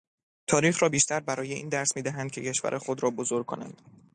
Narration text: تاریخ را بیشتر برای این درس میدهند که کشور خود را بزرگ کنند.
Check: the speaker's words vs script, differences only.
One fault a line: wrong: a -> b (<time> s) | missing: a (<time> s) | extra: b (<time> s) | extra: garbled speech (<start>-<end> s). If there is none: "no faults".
no faults